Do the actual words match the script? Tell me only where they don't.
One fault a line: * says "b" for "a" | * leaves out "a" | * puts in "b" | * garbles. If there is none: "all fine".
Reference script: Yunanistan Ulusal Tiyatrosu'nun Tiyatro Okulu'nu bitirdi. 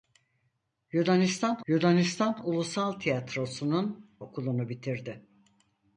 * puts in "yunanistan"
* leaves out "Tiyatro"